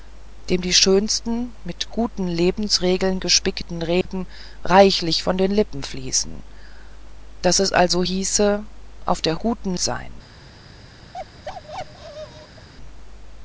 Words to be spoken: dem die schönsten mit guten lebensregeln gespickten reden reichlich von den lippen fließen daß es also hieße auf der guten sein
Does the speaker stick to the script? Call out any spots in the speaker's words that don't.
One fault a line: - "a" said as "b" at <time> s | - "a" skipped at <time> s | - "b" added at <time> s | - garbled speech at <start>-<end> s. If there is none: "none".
none